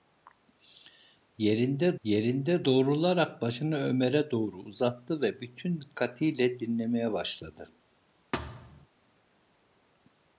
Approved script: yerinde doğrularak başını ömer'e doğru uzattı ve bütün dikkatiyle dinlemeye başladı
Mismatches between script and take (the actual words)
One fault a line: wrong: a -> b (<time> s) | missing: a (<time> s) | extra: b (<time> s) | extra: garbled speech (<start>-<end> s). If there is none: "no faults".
extra: yerinde (2.0 s)